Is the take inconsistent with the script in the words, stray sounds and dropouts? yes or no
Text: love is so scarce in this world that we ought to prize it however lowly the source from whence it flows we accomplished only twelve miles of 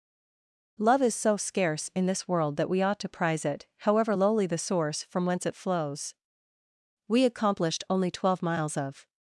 no